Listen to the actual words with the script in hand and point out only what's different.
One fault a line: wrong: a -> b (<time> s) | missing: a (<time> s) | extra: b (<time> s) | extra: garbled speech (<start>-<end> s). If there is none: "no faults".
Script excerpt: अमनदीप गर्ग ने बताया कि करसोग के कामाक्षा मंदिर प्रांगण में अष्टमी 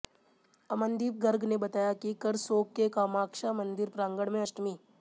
no faults